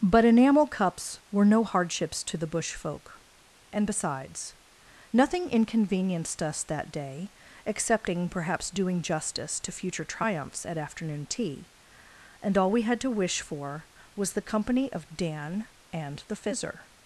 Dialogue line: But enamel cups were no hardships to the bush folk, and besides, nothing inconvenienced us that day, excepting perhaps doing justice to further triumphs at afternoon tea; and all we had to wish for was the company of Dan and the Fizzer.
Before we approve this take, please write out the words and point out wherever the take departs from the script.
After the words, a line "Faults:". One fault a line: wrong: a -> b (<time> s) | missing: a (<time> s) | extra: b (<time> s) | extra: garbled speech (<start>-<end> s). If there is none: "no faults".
But enamel cups were no hardships to the bush folk, and besides, nothing inconvenienced us that day, excepting perhaps doing justice to future triumphs at afternoon tea; and all we had to wish for was the company of Dan and the Fizzer.
Faults:
wrong: further -> future (9.7 s)